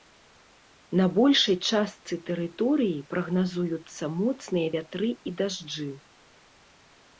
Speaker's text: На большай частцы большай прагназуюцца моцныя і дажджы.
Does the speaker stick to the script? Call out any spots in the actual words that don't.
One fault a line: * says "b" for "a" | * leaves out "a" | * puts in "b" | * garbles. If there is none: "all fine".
* says "тэрыторыі" for "большай"
* puts in "вятры"